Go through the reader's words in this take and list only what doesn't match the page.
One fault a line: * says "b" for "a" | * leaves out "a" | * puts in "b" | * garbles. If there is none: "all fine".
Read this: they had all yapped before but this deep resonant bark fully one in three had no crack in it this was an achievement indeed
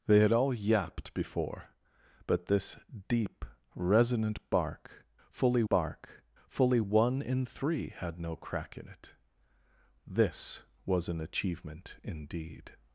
* puts in "bark fully"